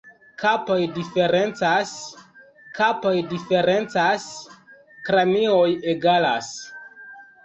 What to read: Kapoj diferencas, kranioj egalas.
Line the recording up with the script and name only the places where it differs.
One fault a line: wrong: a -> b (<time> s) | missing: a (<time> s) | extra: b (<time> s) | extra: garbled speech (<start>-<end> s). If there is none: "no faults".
extra: kapoj diferencas (2.8 s)